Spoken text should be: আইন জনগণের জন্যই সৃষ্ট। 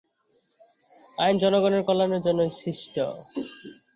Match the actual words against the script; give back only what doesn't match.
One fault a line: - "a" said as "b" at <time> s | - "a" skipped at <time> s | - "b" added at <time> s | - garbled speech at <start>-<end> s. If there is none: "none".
- "কল্যাণের" added at 1.9 s